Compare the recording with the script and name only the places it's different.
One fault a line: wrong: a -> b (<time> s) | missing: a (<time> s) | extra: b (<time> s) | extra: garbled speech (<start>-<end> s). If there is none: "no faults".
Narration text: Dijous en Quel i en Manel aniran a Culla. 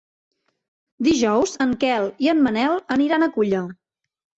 no faults